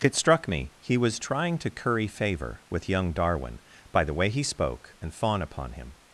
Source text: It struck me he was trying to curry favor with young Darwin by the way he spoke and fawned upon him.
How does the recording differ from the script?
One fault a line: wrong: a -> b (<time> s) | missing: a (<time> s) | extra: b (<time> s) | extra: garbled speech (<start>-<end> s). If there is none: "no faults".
wrong: fawned -> fawn (5.1 s)